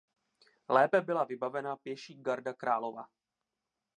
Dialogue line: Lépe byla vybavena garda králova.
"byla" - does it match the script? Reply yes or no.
yes